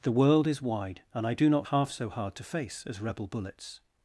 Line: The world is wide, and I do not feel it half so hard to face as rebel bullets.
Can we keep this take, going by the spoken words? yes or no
no